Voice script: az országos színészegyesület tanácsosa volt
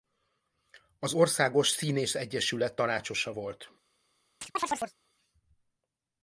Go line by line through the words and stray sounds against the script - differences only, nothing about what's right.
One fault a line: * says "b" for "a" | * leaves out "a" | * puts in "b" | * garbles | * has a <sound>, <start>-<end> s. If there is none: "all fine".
* has a chirp, 4.4-5.0 s